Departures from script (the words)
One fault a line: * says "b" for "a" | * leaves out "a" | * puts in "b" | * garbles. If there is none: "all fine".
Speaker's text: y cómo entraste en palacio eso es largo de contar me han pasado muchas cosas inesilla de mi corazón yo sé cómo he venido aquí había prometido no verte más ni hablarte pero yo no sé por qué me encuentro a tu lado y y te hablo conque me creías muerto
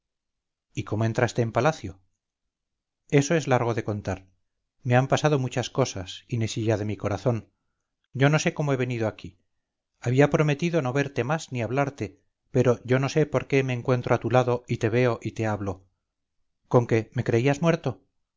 * puts in "no"
* puts in "te veo"